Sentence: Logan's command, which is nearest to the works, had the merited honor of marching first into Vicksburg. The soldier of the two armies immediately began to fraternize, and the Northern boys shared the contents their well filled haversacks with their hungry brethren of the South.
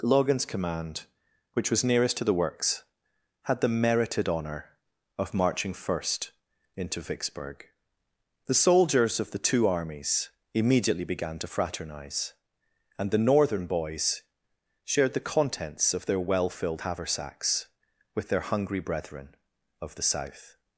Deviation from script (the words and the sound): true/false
true